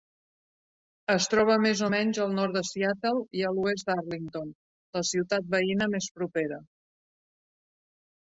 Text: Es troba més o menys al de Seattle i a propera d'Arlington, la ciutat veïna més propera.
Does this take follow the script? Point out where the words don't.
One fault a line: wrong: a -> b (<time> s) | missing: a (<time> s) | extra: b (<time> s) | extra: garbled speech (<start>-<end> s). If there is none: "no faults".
extra: nord (2.4 s)
wrong: propera -> l'oest (3.6 s)